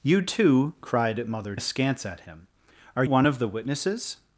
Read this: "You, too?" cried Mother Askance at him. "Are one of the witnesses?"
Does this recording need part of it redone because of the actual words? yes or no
no